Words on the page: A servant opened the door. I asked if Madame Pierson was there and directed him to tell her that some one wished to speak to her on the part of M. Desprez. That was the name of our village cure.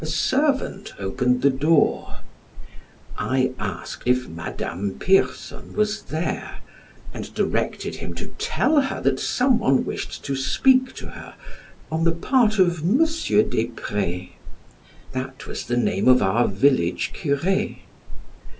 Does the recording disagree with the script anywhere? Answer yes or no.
no